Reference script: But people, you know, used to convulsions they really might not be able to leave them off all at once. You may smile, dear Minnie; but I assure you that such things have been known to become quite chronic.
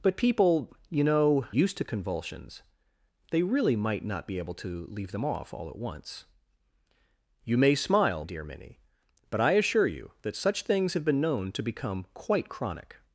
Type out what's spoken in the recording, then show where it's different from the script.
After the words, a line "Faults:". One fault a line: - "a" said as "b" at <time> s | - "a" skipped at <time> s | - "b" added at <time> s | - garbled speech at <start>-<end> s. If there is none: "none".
But people, you know, used to convulsions they really might not be able to leave them off all at once. You may smile, dear Minnie; but I assure you that such things have been known to become quite chronic.
Faults:
none